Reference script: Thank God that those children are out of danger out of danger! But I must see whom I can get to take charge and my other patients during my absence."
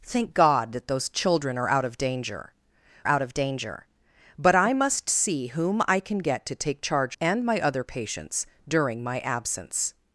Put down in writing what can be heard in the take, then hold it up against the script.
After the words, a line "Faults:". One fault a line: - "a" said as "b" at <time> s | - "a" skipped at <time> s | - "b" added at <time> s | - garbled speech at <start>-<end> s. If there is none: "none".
Thank God that those children are out of danger out of danger! But I must see whom I can get to take charge and my other patients during my absence."
Faults:
none